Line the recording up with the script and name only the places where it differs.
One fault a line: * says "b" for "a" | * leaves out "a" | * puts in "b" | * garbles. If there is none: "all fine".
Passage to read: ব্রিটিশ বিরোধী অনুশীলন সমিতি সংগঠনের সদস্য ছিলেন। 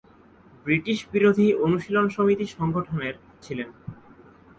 * leaves out "সদস্য"